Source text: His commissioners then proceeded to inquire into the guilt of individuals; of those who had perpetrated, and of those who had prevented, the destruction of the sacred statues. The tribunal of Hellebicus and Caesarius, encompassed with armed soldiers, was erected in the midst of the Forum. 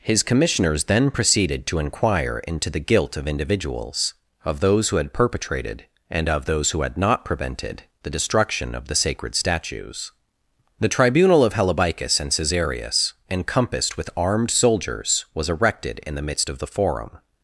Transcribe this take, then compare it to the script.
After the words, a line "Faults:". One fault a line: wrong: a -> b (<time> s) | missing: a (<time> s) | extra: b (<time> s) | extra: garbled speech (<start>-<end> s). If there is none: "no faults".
His commissioners then proceeded to inquire into the guilt of individuals; of those who had perpetrated, and of those who had not prevented, the destruction of the sacred statues. The tribunal of Hellebicus and Caesarius, encompassed with armed soldiers, was erected in the midst of the Forum.
Faults:
extra: not (7.0 s)